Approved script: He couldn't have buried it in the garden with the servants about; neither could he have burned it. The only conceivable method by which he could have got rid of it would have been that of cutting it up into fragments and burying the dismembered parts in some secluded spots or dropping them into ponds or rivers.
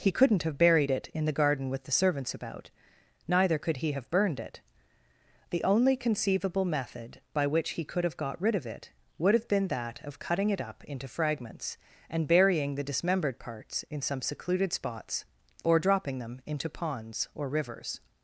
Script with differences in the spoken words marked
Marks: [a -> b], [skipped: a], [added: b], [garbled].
He couldn't have buried it in the garden with the servants about; neither could he have burned it. The only conceivable method by which he could have got rid of it would have been that of cutting it up into fragments and burying the dismembered parts in some secluded spots or dropping them into ponds or rivers.